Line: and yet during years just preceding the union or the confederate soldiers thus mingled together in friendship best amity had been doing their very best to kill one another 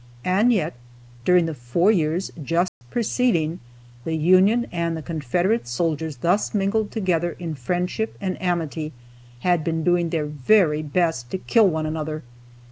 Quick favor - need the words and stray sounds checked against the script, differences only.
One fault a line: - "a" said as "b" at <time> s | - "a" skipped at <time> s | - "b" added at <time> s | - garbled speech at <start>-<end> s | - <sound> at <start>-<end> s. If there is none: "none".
- "the four" added at 1.4 s
- dropout at 2.7-2.8 s
- "or" said as "and" at 4.7 s
- "best" said as "and" at 8.2 s